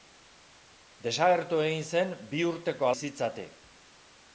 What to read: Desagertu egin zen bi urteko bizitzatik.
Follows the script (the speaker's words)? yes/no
yes